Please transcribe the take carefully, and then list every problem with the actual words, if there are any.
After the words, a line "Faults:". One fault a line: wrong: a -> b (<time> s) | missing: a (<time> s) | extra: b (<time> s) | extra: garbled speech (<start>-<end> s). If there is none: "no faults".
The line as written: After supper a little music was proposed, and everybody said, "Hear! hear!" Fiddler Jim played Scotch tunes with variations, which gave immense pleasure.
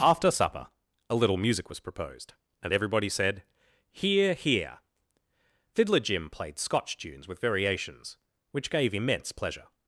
After supper a little music was proposed, and everybody said, "Hear! hear!" Fiddler Jim played Scotch tunes with variations, which gave immense pleasure.
Faults:
no faults